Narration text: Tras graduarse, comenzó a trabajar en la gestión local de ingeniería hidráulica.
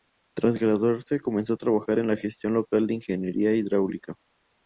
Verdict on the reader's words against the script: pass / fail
pass